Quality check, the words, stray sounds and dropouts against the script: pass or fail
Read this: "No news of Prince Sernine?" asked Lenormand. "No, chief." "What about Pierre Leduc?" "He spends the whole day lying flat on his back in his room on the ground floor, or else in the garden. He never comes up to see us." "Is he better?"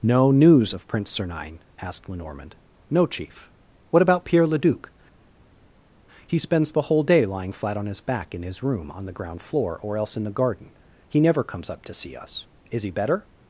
pass